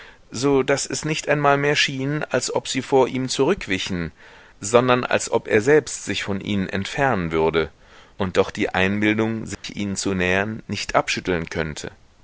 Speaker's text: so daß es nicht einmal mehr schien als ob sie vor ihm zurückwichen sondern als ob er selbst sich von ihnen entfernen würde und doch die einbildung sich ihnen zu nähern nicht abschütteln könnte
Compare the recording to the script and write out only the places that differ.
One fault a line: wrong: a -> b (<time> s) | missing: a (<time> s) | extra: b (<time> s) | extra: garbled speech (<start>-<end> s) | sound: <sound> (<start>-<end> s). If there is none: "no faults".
sound: dropout (9.5-9.6 s)